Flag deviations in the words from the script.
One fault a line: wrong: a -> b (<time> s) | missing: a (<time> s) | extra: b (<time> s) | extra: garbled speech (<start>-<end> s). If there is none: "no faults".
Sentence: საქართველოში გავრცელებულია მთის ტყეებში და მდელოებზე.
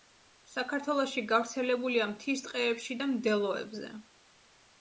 no faults